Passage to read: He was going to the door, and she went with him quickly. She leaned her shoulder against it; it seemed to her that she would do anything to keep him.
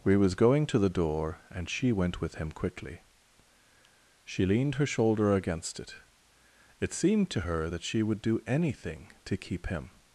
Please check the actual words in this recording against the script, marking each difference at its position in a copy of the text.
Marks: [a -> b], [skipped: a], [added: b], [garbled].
[He -> We] was going to the door, and she went with him quickly. She leaned her shoulder against it; it seemed to her that she would do anything to keep him.